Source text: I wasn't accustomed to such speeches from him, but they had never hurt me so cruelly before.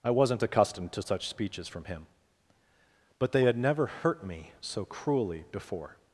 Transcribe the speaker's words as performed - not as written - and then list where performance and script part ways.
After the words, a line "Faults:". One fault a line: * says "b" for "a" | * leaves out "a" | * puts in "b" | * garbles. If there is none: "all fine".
I wasn't accustomed to such speeches from him, but they had never hurt me so cruelly before.
Faults:
all fine